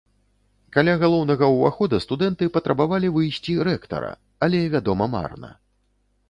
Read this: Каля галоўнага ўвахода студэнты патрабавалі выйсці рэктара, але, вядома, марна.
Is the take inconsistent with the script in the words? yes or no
no